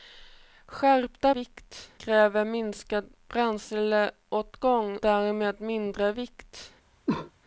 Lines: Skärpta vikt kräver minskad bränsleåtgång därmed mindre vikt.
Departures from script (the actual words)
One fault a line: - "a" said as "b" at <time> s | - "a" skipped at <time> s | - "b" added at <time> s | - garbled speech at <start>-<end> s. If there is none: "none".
none